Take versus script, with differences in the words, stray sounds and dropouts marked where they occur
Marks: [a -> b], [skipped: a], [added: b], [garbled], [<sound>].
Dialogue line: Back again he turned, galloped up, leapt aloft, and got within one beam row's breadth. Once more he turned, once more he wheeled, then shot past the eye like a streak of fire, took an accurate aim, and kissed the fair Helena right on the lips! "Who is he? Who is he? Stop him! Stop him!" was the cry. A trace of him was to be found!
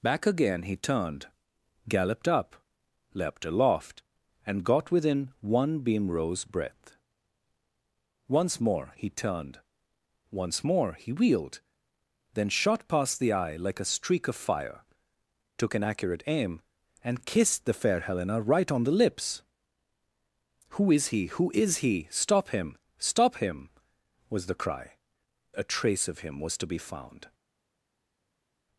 Back again he turned, galloped up, leapt aloft, and got within one beam row's breadth. Once more he turned, once more he wheeled, then shot past the eye like a streak of fire, took an accurate aim, and kissed the fair Helena right on the lips! "Who is he? Who is he? Stop him! Stop him!" was the cry. A trace of him was to be found!